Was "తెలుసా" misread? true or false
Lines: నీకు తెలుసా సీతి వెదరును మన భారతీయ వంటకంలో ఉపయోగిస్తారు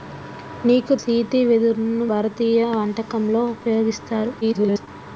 true